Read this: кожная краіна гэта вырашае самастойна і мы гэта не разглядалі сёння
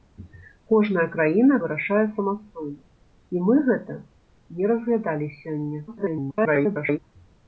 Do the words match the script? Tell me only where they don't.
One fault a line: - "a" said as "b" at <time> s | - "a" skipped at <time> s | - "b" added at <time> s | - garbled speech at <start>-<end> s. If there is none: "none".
- "гэта" skipped at 1.6 s
- garbled speech at 5.9-7.0 s